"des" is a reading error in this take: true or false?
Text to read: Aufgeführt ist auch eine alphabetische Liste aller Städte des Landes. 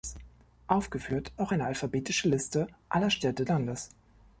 true